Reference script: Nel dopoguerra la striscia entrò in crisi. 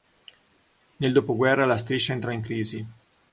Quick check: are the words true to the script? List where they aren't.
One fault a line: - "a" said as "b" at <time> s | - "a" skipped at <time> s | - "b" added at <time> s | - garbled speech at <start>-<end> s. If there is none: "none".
none